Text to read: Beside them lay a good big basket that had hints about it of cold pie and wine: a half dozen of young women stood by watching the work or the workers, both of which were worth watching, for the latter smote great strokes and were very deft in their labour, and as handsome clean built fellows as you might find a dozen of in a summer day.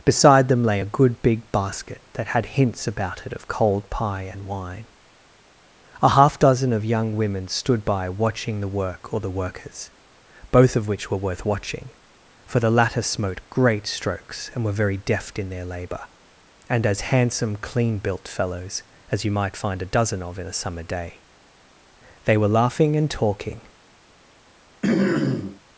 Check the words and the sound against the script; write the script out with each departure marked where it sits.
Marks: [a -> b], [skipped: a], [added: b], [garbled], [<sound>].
Beside them lay a good big basket that had hints about it of cold pie and wine: a half dozen of young women stood by watching the work or the workers, both of which were worth watching, for the latter smote great strokes and were very deft in their labour, and as handsome clean built fellows as you might find a dozen of in a summer day. [added: They were laughing and talking] [throat clearing]